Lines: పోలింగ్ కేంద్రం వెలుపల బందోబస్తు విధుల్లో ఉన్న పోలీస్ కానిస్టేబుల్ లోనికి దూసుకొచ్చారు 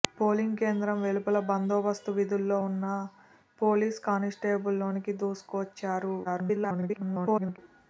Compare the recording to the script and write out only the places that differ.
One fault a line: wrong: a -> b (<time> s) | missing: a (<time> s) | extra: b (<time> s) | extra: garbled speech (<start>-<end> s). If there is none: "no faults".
extra: garbled speech (6.2-7.6 s)